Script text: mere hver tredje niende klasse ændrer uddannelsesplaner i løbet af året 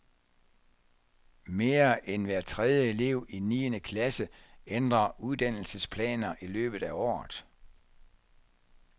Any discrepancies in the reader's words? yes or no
yes